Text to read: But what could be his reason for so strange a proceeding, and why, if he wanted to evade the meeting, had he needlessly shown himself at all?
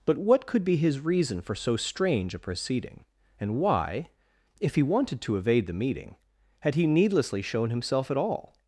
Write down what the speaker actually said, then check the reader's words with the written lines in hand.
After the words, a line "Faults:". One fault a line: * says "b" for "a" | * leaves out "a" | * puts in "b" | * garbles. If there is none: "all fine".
But what could be his reason for so strange a proceeding, and why, if he wanted to evade the meeting, had he needlessly shown himself at all?
Faults:
all fine